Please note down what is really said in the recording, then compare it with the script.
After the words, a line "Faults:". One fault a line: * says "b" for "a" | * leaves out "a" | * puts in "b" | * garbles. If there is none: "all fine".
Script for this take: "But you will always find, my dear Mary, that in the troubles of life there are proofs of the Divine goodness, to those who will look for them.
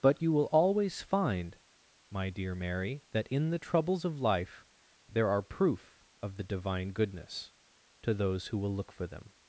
"But you will always find, my dear Mary, that in the troubles of life there are proof of the Divine goodness, to those who will look for them.
Faults:
* says "proof" for "proofs"